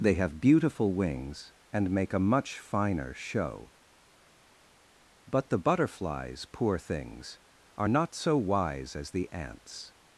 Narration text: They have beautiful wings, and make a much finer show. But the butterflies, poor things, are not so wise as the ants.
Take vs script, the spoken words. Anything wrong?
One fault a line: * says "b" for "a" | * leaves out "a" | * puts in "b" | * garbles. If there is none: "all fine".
all fine